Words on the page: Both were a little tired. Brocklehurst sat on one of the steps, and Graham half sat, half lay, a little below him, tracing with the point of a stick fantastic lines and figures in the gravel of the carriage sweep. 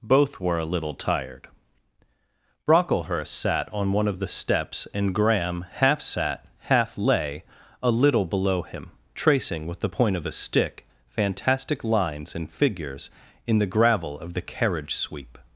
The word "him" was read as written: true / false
true